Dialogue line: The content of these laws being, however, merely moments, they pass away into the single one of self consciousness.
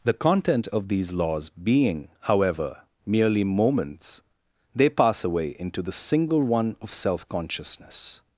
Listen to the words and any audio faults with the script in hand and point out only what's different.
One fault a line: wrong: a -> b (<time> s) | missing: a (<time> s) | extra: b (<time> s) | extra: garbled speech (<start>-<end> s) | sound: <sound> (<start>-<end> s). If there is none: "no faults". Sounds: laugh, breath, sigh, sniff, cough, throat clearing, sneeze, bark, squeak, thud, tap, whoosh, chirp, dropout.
no faults